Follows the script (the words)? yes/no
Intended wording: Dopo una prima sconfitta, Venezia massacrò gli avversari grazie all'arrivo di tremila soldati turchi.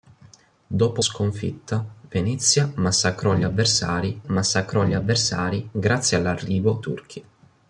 no